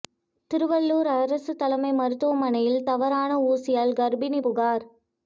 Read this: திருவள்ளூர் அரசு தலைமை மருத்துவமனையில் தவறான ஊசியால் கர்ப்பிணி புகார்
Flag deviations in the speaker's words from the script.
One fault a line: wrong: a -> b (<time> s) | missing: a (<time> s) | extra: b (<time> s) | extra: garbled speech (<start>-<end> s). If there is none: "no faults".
no faults